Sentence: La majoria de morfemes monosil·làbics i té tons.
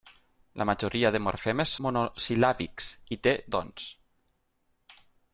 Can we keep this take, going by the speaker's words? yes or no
yes